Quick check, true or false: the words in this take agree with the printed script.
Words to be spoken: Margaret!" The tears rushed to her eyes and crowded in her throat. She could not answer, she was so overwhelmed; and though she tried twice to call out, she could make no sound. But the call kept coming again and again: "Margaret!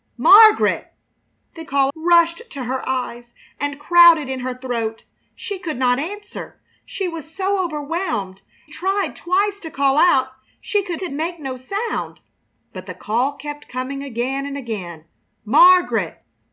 false